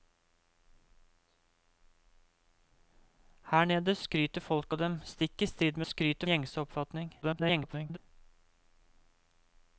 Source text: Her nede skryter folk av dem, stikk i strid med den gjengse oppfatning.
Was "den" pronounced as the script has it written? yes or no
no